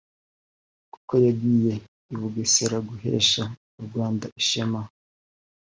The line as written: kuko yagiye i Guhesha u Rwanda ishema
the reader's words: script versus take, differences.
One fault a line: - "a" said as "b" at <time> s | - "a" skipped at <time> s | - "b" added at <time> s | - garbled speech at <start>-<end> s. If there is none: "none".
- "Bugesera" added at 2.2 s